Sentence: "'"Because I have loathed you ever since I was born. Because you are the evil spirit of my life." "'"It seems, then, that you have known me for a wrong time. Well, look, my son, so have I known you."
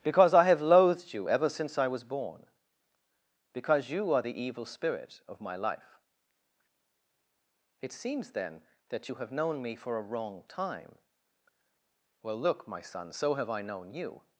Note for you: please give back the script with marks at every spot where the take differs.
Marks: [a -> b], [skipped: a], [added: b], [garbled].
"'"Because I have loathed you ever since I was born. Because you are the evil spirit of my life." "'"It seems, then, that you have known me for a wrong time. Well, look, my son, so have I known you."